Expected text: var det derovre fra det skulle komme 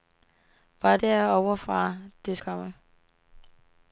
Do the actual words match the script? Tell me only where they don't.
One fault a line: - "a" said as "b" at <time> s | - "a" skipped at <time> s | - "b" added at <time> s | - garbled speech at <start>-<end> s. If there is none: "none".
- "det" skipped at 1.0 s
- "skulle" skipped at 2.4 s